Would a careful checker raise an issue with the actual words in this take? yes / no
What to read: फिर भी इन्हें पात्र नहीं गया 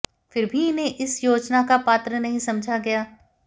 yes